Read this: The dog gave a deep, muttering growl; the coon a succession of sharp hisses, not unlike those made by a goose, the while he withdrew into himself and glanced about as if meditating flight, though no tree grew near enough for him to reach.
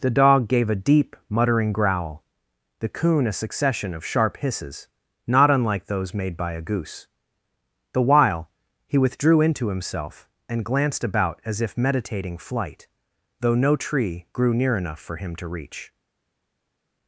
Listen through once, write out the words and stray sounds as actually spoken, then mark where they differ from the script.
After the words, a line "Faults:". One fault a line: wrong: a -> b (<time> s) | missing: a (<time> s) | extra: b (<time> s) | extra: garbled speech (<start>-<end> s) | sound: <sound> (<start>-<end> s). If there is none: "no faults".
The dog gave a deep, muttering growl; the coon a succession of sharp hisses, not unlike those made by a goose, the while he withdrew into himself and glanced about as if meditating flight, though no tree grew near enough for him to reach.
Faults:
no faults